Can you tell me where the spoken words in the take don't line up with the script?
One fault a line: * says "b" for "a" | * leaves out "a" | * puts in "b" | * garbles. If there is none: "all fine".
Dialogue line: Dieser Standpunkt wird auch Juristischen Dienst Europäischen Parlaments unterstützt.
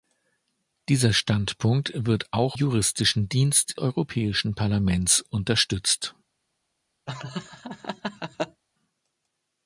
all fine